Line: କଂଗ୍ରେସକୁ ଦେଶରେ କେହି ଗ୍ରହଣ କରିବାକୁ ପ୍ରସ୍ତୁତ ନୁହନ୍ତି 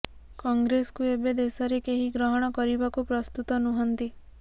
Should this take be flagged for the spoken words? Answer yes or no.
yes